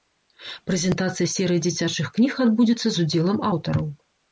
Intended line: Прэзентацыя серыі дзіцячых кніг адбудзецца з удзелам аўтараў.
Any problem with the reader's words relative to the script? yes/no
no